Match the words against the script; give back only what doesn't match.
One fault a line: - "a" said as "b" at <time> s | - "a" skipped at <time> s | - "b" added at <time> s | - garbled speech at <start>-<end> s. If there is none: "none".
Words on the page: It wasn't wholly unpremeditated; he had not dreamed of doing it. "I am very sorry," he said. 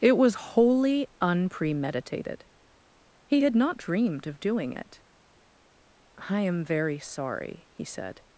- "wasn't" said as "was" at 0.2 s